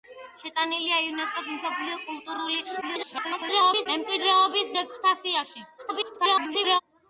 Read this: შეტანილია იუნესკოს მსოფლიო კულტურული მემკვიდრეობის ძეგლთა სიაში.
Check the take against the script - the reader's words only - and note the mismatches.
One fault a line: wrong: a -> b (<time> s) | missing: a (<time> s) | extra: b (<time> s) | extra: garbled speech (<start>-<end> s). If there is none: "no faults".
extra: garbled speech (2.8-3.9 s)
extra: garbled speech (5.8-6.8 s)